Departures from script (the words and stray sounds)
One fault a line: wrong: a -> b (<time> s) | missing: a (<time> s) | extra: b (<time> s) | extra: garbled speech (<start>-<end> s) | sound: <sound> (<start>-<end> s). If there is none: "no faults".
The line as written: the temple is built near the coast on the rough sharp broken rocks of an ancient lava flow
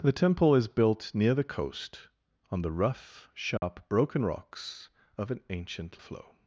sound: dropout (3.6-3.6 s)
missing: lava (6.0 s)